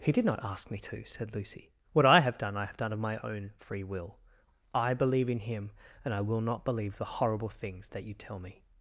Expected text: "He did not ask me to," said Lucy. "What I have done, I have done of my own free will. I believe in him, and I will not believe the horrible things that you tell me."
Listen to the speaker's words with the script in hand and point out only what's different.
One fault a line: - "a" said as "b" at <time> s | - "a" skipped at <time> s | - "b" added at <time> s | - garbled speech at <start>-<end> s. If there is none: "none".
none